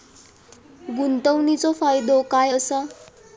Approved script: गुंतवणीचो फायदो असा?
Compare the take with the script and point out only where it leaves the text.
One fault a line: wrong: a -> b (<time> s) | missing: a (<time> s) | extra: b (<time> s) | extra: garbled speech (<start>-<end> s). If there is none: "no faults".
extra: काय (2.3 s)